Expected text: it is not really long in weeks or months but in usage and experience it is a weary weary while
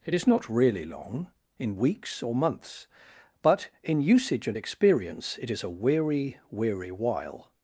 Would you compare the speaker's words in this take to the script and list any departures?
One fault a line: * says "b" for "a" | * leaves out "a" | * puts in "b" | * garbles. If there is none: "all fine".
all fine